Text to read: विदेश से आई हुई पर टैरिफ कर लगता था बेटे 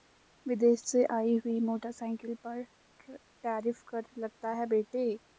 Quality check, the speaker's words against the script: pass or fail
fail